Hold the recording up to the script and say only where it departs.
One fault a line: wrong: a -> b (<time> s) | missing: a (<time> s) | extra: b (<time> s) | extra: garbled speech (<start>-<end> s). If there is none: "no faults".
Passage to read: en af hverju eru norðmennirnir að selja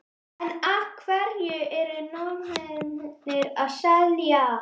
no faults